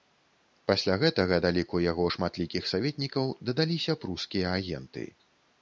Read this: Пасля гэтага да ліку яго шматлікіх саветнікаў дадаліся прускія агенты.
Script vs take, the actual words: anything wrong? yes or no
no